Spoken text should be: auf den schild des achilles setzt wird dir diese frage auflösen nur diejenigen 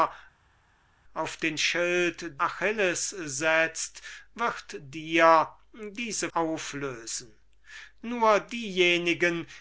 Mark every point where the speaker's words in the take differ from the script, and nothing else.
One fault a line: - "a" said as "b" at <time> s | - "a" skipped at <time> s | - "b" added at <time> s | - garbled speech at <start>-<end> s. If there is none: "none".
- "des" skipped at 2.4 s
- "frage" skipped at 6.3 s